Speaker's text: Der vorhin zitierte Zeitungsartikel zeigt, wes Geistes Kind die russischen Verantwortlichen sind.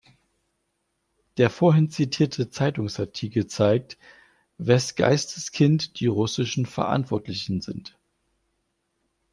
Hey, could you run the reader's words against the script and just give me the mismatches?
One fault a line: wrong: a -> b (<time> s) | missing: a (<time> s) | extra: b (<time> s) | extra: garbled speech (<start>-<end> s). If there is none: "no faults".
no faults